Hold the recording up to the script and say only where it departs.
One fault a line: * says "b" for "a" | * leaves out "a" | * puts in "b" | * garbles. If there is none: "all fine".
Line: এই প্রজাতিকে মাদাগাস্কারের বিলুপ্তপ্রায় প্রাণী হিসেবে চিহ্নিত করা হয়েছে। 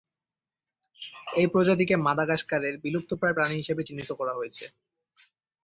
all fine